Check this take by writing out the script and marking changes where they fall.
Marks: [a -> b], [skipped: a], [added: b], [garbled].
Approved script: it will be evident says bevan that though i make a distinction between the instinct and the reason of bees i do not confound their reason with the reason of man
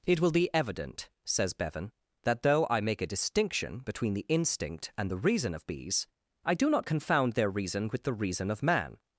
it will be evident says bevan that though i make a distinction between the instinct and the reason of bees i do not confound their reason with the reason of man